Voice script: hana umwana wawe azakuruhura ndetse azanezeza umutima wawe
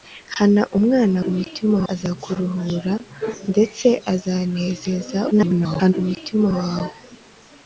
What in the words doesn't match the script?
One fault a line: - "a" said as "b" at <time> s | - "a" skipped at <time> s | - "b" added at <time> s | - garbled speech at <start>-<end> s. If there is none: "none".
- "wawe" said as "umutima" at 1.3 s
- garbled speech at 5.3-5.9 s